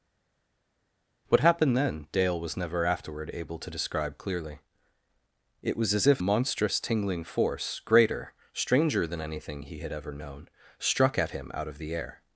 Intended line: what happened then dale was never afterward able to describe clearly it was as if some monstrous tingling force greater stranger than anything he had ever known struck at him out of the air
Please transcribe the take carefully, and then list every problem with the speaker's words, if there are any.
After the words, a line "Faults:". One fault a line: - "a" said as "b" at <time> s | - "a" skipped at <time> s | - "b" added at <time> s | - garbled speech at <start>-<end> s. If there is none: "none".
what happened then dale was never afterward able to describe clearly it was as if monstrous tingling force greater stranger than anything he had ever known struck at him out of the air
Faults:
- "some" skipped at 6.2 s